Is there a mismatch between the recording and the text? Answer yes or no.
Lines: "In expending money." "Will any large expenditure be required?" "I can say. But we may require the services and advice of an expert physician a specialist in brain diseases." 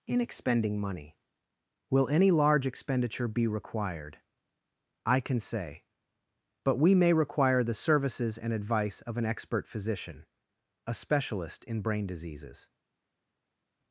no